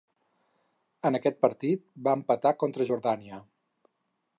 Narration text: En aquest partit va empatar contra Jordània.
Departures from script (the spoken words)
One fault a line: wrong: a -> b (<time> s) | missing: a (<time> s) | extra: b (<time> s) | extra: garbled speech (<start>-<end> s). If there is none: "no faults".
no faults